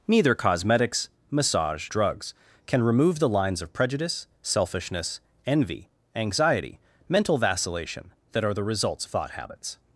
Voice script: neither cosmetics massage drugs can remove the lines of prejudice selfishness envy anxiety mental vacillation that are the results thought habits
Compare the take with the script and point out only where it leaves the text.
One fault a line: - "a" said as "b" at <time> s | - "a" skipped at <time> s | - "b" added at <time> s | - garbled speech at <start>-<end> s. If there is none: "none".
none